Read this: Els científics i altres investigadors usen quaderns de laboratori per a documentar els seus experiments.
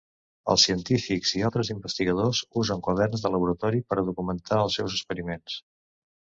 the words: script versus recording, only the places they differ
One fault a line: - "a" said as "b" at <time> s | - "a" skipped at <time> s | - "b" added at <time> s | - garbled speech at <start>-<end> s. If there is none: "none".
none